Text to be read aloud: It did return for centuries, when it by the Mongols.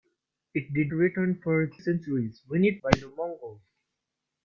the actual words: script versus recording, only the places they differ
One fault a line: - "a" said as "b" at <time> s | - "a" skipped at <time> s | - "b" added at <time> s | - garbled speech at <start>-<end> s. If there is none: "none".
none